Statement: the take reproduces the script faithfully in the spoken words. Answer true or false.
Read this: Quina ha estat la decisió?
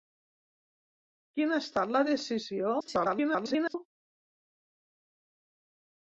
false